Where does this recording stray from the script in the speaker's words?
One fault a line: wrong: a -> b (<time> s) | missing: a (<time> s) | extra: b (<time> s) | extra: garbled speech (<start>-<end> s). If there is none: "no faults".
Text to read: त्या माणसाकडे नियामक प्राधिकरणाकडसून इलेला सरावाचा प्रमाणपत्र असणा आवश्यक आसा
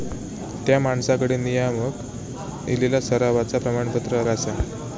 missing: प्राधिकरणाकडसून (2.0 s)
missing: असणा आवश्यक (4.2 s)